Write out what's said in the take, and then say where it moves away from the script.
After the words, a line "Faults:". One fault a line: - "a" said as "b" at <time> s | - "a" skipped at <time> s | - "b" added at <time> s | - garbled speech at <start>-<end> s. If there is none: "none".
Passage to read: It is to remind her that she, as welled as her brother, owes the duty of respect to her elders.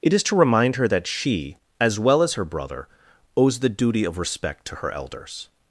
It is to remind her that she, as well as her brother, owes the duty of respect to her elders.
Faults:
- "welled" said as "well" at 2.0 s